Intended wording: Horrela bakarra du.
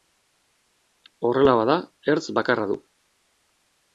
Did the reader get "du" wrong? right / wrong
right